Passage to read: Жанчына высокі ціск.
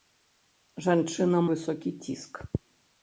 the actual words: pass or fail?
pass